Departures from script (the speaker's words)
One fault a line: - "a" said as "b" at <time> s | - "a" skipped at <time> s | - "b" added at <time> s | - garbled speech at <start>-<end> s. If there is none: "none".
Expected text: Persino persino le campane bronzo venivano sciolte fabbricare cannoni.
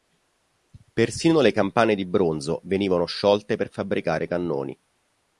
- "persino" skipped at 1.4 s
- "di" added at 1.9 s
- "per" added at 3.5 s